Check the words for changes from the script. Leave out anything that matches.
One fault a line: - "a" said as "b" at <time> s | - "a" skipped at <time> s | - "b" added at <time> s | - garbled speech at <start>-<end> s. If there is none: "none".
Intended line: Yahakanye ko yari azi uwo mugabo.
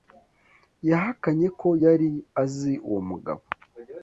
none